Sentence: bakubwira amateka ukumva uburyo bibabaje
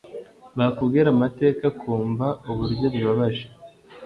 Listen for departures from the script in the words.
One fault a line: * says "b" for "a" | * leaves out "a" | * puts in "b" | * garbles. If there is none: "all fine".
all fine